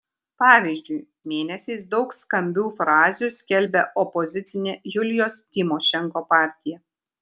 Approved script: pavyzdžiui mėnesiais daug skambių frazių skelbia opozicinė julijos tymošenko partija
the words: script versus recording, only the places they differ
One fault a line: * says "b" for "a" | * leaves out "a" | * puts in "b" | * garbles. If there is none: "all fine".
all fine